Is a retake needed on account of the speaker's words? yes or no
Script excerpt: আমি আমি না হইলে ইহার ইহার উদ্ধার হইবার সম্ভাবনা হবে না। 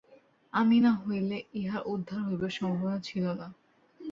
yes